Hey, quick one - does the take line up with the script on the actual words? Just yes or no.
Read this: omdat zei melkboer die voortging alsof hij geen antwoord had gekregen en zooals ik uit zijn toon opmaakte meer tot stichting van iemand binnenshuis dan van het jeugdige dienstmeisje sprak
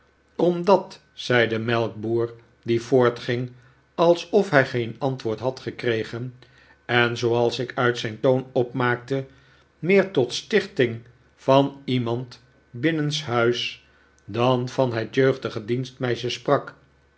no